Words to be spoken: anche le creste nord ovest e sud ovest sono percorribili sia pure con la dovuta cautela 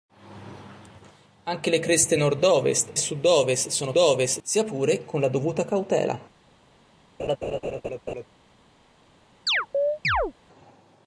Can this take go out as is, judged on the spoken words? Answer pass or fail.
fail